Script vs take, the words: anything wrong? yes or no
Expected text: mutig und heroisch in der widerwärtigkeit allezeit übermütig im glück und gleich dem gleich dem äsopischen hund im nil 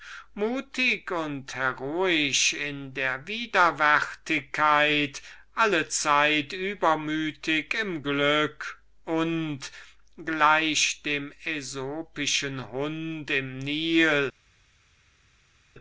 yes